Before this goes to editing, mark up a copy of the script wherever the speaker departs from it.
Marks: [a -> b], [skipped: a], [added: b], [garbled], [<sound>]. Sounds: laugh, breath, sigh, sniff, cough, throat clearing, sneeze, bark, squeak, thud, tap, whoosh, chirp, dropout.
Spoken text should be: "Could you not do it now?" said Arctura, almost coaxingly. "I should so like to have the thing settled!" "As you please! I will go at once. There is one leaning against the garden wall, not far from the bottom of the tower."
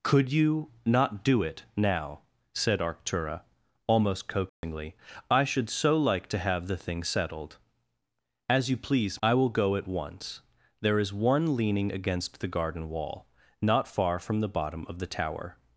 "Could you not do it now?" said Arctura, almost coaxingly. [dropout] "I should so like to have the thing settled!" "As you please! I will go at once. There is one leaning against the garden wall, not far from the bottom of the tower."